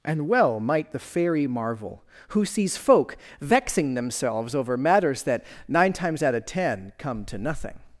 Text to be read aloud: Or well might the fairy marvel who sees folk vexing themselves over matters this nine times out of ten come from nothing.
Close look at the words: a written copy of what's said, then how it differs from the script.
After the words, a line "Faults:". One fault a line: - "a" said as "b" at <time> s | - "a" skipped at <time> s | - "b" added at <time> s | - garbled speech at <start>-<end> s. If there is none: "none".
And well might the fairy marvel who sees folk vexing themselves over matters that nine times out of ten come to nothing.
Faults:
- "Or" said as "And" at 0.0 s
- "this" said as "that" at 5.2 s
- "from" said as "to" at 7.2 s